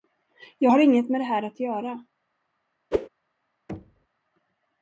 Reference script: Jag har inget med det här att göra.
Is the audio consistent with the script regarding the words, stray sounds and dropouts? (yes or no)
no